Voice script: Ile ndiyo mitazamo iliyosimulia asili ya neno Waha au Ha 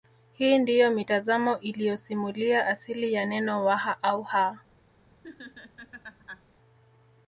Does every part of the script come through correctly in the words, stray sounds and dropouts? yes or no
no